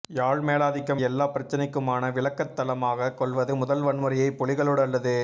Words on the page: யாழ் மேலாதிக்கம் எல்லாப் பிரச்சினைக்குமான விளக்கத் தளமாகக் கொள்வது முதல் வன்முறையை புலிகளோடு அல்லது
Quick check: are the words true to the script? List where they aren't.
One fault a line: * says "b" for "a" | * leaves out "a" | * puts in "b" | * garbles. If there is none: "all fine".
all fine